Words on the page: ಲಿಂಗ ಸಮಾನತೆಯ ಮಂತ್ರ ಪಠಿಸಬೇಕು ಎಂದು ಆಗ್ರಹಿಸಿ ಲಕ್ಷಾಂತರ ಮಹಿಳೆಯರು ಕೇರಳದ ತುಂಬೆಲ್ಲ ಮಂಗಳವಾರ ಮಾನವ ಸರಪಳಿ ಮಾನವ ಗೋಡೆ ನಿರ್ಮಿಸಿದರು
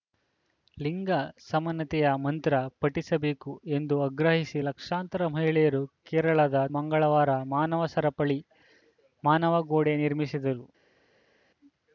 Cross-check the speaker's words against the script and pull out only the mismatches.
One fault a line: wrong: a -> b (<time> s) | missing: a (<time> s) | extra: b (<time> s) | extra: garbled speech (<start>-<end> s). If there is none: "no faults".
missing: ತುಂಬೆಲ್ಲ (6.6 s)